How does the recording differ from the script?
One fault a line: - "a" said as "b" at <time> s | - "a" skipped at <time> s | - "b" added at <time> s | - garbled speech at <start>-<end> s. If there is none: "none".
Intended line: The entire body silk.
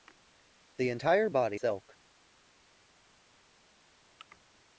none